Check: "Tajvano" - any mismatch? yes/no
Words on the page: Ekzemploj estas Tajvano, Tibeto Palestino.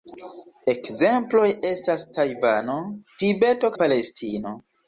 no